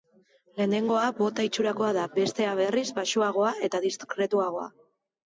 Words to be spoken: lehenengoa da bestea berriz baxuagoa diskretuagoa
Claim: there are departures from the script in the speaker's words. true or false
true